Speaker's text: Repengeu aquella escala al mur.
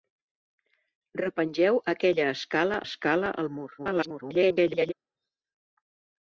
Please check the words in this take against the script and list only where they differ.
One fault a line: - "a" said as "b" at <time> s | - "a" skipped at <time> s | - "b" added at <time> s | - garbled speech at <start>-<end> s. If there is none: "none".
- "escala" added at 2.9 s
- garbled speech at 3.8-4.9 s